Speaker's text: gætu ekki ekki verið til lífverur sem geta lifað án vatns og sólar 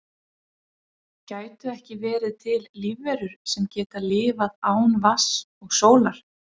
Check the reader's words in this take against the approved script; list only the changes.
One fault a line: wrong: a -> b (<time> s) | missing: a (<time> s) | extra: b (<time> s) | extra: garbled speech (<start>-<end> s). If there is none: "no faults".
missing: ekki (2.0 s)